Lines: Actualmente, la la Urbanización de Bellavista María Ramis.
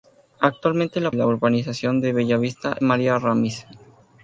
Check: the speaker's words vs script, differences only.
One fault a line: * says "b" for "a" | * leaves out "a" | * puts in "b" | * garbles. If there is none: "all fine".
all fine